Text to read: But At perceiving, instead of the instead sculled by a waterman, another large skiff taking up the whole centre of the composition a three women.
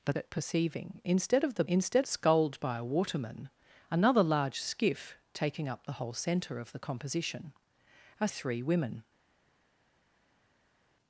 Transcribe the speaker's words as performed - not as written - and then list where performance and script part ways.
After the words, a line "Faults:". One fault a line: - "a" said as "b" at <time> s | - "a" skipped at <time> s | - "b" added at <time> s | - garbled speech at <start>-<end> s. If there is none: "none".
But At perceiving, instead of the instead sculled by a waterman, another large skiff taking up the whole centre of the composition a three women.
Faults:
none